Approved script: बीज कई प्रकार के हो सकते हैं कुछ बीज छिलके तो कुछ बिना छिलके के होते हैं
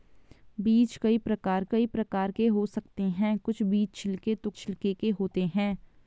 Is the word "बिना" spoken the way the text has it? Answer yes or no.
no